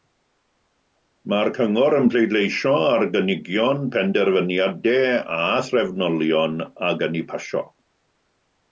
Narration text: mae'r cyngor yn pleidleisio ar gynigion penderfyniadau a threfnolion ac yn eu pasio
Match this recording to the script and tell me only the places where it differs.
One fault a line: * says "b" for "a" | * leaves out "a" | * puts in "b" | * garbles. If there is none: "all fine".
all fine